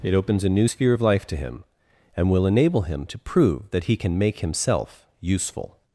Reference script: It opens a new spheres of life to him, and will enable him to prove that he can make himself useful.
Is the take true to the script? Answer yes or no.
no